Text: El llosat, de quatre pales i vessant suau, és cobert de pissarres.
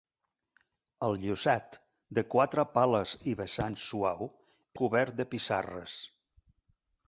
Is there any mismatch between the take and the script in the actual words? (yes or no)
yes